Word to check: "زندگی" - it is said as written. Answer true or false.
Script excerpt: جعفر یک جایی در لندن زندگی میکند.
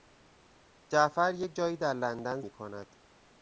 false